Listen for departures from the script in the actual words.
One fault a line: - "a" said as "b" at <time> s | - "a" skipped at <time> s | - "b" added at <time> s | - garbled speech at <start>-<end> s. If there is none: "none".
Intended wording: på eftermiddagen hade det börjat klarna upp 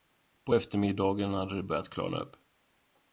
none